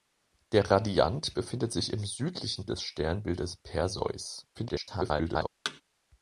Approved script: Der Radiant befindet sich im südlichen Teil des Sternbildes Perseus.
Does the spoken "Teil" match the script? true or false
false